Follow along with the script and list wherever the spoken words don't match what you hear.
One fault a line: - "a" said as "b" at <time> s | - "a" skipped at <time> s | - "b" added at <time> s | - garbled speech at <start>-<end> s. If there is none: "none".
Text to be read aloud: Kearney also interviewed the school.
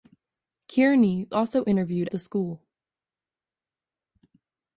none